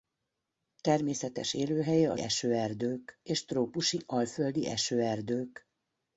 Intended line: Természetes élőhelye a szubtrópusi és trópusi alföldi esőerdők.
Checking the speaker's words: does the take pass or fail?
fail